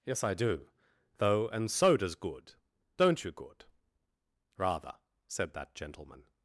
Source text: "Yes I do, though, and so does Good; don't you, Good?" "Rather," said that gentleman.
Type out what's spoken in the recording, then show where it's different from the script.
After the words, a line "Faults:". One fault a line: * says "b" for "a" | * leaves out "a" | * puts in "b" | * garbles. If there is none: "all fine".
"Yes I do, though, and so does Good; don't you, Good?" "Rather," said that gentleman.
Faults:
all fine